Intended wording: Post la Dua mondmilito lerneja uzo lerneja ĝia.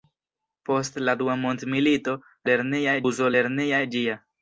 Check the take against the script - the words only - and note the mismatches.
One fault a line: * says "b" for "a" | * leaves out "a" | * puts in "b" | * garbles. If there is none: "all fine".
all fine